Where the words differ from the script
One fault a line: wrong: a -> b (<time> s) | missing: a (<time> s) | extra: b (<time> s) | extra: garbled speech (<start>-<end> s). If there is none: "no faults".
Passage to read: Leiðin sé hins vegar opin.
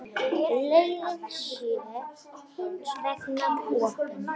no faults